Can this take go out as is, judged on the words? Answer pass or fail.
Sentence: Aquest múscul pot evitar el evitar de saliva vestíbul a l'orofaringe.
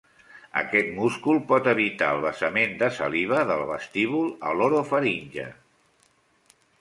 fail